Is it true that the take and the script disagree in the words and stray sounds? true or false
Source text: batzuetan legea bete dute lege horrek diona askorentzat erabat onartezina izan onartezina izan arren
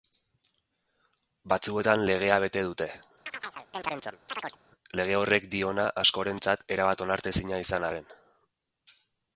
true